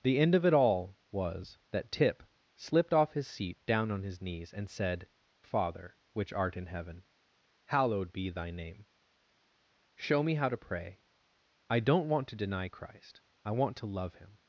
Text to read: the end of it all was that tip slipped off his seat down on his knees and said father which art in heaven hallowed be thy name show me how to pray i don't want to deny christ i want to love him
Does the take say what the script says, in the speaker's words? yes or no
yes